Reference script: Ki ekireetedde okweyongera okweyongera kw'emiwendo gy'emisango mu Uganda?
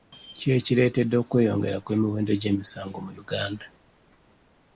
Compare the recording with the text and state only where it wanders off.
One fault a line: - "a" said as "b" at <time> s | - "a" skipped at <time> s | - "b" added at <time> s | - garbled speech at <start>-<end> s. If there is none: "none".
- "okweyongera" skipped at 1.8 s